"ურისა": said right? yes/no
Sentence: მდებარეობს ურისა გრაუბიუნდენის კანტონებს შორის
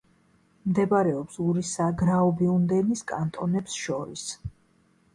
yes